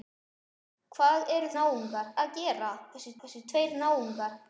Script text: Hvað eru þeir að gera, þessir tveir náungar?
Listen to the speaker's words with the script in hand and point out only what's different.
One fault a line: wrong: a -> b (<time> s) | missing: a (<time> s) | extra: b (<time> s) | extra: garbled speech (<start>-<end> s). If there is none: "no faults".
wrong: þeir -> náungar (1.6 s)
extra: þessir (3.2 s)